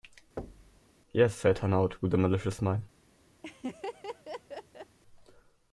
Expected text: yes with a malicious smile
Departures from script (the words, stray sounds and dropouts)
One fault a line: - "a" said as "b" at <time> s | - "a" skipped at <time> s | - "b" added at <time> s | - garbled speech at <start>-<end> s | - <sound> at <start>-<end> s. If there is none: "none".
- thud at 0.4-0.8 s
- "said hanaud" added at 1.3 s
- laugh at 3.4-5.0 s